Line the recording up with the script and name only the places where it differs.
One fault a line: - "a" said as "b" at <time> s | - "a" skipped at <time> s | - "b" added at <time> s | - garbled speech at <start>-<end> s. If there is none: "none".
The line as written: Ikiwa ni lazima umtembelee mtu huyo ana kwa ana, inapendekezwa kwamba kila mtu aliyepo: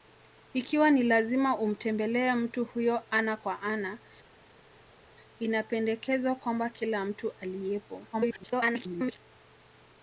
- garbled speech at 8.1-9.2 s